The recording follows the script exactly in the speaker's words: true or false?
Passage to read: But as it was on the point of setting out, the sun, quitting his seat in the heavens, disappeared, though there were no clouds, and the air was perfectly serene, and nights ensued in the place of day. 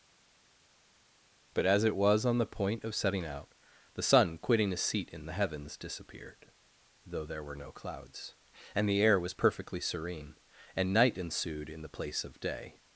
false